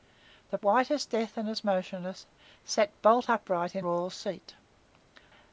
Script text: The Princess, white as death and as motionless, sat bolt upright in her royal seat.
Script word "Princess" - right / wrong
wrong